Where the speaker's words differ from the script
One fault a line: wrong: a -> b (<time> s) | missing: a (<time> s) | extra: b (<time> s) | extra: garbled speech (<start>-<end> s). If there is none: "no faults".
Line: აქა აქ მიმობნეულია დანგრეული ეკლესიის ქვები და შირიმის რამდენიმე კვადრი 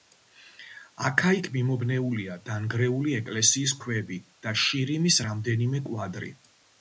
wrong: აქ -> იქ (1.4 s)